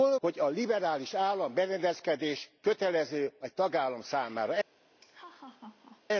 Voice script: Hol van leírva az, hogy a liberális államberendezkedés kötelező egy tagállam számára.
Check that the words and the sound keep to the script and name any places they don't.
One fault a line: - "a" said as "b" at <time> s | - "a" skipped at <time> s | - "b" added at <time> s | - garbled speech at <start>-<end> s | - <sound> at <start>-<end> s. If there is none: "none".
- "van leírva az" skipped at 0.2 s
- laugh at 5.0-6.0 s